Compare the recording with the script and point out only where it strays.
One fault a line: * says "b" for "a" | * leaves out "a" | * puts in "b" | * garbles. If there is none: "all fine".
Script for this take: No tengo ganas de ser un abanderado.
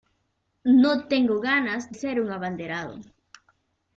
* leaves out "de"